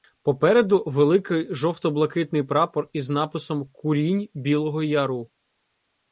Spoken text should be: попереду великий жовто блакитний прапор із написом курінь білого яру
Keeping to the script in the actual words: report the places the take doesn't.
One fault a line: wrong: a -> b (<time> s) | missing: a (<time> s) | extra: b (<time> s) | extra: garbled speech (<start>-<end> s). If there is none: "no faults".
no faults